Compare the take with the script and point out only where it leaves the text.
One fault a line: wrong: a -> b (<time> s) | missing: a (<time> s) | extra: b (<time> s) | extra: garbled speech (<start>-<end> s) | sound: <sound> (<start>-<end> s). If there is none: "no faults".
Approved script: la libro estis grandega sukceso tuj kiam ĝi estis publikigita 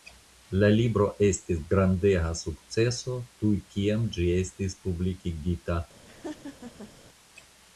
sound: laugh (6.1-6.9 s)